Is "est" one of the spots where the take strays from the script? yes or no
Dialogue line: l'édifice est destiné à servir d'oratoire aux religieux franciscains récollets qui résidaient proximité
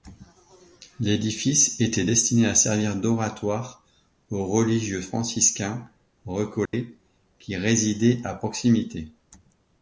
yes